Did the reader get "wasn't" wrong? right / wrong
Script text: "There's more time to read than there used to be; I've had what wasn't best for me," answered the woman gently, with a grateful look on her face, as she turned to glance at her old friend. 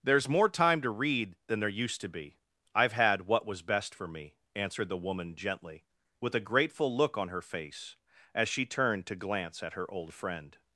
wrong